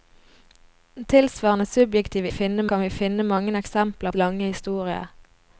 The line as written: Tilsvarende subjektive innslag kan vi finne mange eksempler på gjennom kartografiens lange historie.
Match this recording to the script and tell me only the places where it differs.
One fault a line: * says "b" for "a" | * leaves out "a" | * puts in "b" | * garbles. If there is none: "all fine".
* says "finne" for "innslag"
* leaves out "på gjennom kartografiens"